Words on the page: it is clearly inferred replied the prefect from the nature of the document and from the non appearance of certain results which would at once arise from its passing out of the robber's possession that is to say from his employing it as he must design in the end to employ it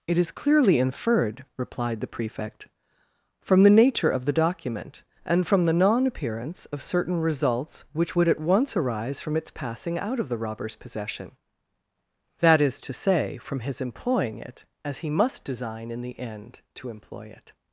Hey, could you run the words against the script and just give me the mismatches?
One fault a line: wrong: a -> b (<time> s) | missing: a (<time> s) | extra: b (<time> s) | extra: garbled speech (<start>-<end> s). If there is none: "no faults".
no faults